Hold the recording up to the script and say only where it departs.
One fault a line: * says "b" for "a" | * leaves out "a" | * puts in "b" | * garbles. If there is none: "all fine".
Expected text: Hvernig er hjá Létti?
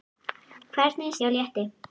all fine